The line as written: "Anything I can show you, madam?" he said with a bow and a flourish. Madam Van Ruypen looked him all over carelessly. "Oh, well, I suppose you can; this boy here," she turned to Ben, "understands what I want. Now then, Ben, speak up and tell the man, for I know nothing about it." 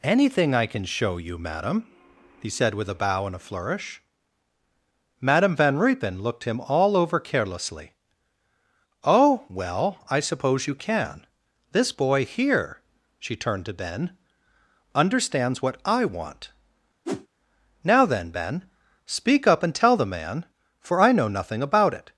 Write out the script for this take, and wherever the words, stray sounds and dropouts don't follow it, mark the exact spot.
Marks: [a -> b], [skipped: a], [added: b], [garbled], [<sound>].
"Anything I can show you, madam?" he said with a bow and a flourish. Madam Van Ruypen looked him all over carelessly. "Oh, well, I suppose you can; this boy here," she turned to Ben, "understands what I want. [whoosh] Now then, Ben, speak up and tell the man, for I know nothing about it."